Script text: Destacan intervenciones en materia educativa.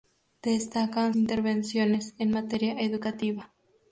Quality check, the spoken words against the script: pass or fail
pass